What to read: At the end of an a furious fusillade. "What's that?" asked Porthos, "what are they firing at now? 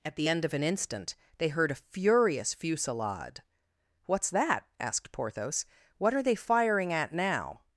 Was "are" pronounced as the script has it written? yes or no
yes